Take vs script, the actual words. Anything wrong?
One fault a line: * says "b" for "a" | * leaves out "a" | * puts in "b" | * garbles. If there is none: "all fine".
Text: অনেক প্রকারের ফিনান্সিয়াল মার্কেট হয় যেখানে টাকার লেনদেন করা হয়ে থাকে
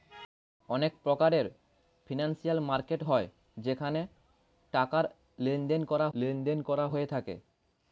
* puts in "লেনদেন করা"